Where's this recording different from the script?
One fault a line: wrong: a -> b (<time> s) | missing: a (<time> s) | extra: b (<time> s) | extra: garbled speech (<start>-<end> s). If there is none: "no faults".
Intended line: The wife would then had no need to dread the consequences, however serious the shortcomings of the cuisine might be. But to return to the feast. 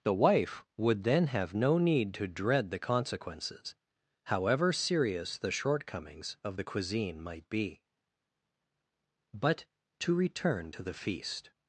wrong: had -> have (1.3 s)